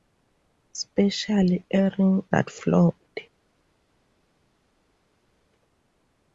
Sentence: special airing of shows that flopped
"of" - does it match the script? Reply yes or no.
no